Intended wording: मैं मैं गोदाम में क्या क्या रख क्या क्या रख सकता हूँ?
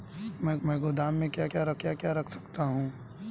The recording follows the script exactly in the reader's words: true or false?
true